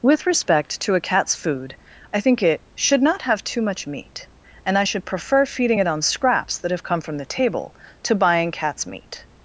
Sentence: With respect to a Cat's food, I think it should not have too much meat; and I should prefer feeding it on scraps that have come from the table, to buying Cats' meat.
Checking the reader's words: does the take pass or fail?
pass